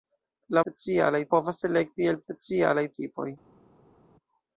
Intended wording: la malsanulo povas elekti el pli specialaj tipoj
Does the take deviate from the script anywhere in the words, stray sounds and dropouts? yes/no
yes